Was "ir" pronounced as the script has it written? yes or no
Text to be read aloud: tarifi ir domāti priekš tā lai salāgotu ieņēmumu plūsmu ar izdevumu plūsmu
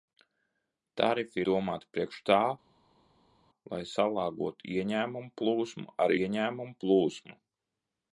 no